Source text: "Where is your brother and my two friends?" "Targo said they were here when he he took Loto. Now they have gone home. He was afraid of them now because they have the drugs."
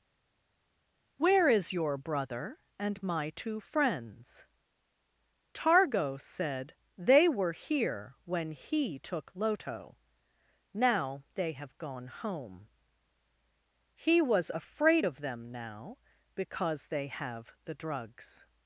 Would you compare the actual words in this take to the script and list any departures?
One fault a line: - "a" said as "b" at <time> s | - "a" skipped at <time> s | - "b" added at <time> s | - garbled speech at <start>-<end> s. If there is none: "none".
- "he" skipped at 9.0 s